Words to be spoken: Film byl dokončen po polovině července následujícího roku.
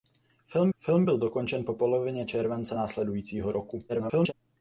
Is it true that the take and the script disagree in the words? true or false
true